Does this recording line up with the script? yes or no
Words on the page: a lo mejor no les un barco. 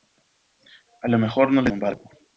yes